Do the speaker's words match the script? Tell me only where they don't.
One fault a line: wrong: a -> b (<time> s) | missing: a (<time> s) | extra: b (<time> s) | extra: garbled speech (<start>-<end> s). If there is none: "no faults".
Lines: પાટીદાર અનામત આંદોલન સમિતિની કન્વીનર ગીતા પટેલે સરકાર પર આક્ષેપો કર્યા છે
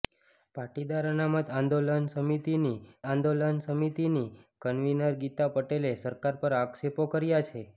extra: આંદોલન સમિતિની (3.1 s)